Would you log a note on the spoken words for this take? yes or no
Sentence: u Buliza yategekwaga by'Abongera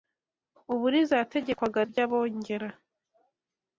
no